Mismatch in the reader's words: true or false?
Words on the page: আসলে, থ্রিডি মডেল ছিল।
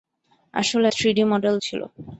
false